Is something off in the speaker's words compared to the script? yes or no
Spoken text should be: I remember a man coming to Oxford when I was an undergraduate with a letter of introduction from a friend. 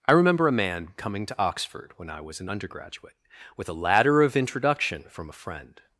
yes